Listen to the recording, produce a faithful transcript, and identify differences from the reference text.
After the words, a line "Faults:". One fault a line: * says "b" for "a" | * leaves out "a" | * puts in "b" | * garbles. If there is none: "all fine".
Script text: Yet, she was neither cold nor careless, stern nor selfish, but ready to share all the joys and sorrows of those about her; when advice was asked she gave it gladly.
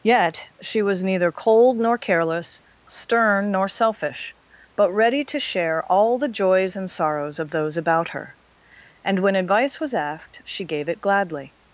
Yet, she was neither cold nor careless, stern nor selfish, but ready to share all the joys and sorrows of those about her; and when advice was asked she gave it gladly.
Faults:
* puts in "and"